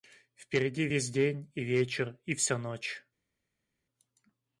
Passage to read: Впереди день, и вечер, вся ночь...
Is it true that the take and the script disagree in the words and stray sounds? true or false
true